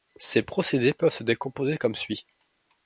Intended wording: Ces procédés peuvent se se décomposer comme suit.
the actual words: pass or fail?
fail